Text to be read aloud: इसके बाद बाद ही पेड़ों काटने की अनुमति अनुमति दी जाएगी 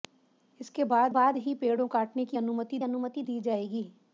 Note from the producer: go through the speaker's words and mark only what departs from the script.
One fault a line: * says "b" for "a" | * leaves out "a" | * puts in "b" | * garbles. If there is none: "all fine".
all fine